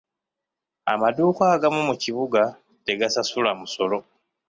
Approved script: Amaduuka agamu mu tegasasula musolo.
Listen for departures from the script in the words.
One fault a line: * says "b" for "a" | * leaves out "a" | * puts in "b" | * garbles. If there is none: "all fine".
* puts in "kibuga"